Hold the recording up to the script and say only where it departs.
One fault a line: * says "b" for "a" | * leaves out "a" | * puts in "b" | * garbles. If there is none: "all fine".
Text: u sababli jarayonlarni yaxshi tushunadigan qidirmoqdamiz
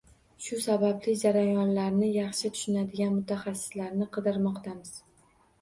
* says "shu" for "u"
* puts in "mutaxassislarni"